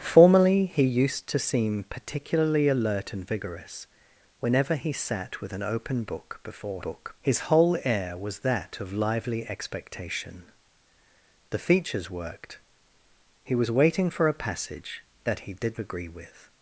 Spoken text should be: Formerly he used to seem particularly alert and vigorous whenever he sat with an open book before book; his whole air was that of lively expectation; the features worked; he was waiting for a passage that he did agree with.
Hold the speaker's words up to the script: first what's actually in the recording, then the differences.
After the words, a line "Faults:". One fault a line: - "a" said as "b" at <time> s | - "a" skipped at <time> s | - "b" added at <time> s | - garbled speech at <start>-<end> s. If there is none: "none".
Formerly he used to seem particularly alert and vigorous whenever he sat with an open book before book; his whole air was that of lively expectation; the features worked; he was waiting for a passage that he did agree with.
Faults:
none